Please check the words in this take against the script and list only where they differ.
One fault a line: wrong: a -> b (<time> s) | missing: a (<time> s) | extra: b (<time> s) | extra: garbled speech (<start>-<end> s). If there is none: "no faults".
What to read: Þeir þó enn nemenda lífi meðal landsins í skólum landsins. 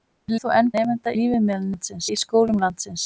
no faults